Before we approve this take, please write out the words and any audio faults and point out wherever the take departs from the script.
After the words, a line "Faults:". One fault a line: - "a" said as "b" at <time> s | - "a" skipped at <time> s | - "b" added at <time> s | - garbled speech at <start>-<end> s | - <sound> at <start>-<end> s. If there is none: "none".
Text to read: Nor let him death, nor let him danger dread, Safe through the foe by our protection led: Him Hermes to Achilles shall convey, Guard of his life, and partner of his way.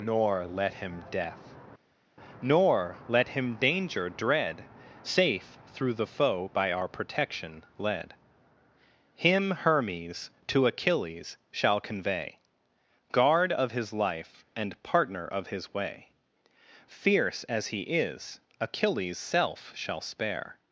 Nor let him death, nor let him danger dread, Safe through the foe by our protection led: Him Hermes to Achilles shall convey, Guard of his life, and partner of his way. Fierce as he is, Achilles' self shall spare
Faults:
- "Fierce as he is Achilles self shall spare" added at 16.9 s